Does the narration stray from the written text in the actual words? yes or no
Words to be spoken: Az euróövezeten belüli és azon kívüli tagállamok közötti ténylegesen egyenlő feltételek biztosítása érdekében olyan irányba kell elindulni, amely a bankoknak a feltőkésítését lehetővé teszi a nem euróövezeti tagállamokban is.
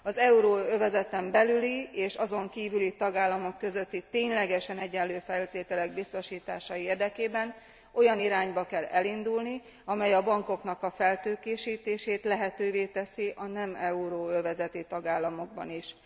no